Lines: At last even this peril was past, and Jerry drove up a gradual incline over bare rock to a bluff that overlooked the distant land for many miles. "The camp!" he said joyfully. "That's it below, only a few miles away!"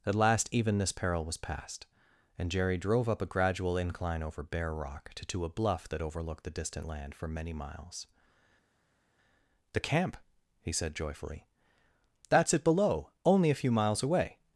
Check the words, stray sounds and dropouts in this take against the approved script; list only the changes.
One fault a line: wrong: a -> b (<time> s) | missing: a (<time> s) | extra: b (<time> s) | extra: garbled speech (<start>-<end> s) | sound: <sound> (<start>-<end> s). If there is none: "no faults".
extra: to (5.3 s)